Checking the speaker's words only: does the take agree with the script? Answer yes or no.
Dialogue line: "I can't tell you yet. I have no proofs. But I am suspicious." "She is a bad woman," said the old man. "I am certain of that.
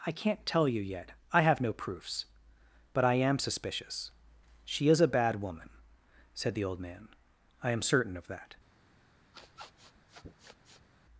yes